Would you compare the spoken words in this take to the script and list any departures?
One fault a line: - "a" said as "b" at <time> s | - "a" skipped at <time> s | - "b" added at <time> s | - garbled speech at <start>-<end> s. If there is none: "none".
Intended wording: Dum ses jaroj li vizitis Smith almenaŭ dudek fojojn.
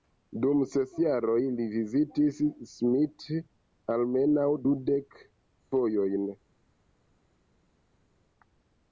none